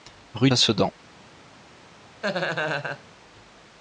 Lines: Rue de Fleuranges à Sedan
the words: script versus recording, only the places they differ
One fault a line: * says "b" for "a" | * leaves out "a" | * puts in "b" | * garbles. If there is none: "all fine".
* leaves out "Fleuranges"